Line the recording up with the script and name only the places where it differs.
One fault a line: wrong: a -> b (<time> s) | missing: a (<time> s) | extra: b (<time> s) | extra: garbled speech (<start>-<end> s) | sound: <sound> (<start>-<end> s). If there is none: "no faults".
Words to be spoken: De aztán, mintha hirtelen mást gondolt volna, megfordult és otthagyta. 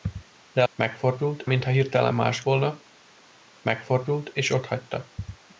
wrong: aztán -> megfordult (0.7 s)
missing: gondolt (2.4 s)